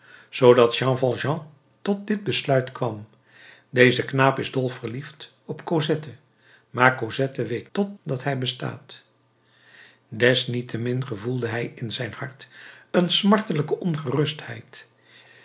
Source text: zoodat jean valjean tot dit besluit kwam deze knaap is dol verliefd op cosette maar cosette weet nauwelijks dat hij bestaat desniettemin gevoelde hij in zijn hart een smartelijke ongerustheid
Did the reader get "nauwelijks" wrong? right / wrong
wrong